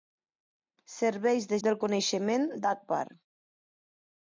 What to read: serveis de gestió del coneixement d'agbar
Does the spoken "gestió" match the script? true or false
false